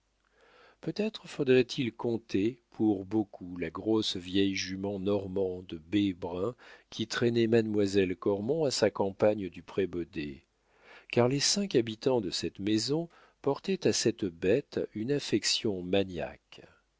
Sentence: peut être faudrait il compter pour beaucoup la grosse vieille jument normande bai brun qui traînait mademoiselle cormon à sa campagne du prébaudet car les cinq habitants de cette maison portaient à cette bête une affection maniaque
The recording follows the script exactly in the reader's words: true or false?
true